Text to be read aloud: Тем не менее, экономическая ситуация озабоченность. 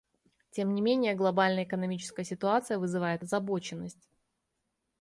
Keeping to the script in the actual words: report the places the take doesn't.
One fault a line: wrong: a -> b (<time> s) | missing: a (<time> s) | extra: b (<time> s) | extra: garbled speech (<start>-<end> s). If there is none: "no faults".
extra: глобальная (1.1 s)
extra: вызывает (2.8 s)